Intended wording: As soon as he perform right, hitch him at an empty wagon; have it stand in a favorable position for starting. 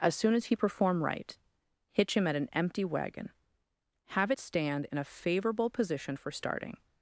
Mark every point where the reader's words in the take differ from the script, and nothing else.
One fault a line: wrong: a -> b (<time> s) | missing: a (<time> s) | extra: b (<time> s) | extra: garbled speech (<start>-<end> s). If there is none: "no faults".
no faults